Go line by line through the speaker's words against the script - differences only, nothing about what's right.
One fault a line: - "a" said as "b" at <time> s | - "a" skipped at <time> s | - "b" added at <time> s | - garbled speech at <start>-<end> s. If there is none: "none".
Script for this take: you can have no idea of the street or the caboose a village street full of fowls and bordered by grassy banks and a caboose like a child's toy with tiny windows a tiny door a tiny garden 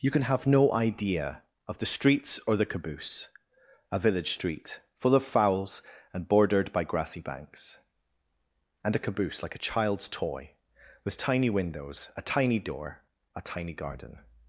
- "street" said as "streets" at 1.9 s